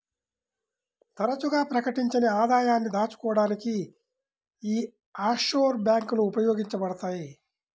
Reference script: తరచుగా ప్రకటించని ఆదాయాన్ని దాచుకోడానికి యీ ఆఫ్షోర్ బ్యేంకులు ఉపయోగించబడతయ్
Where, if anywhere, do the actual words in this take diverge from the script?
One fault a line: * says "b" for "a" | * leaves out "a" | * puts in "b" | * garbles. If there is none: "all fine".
all fine